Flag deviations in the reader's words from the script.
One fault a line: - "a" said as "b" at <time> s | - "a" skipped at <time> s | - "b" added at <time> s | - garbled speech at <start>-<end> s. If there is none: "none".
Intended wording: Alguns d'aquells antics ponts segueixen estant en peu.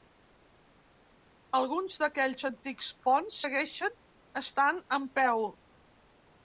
none